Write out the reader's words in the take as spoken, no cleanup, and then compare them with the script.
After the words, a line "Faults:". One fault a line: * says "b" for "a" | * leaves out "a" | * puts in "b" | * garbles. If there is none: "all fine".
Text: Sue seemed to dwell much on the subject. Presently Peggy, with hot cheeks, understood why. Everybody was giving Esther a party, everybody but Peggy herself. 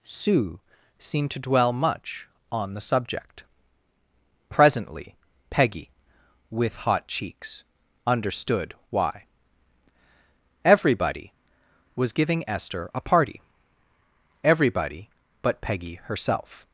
Sue seemed to dwell much on the subject. Presently Peggy, with hot cheeks, understood why. Everybody was giving Esther a party, everybody but Peggy herself.
Faults:
all fine